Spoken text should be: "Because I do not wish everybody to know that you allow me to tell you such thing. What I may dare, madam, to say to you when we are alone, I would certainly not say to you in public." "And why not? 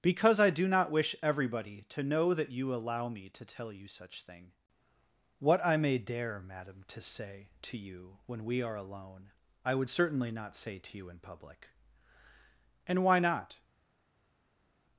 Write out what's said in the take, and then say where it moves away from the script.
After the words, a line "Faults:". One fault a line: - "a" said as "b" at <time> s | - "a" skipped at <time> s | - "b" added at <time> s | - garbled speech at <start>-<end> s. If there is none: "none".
"Because I do not wish everybody to know that you allow me to tell you such thing. What I may dare, madam, to say to you when we are alone, I would certainly not say to you in public." "And why not?
Faults:
none